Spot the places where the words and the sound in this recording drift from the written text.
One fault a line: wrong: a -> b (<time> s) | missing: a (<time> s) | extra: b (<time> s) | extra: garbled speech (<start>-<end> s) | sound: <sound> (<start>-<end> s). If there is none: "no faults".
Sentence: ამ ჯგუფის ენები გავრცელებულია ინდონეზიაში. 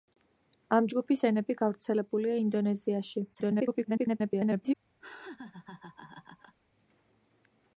extra: garbled speech (3.3-4.7 s)
sound: laugh (5.0-6.6 s)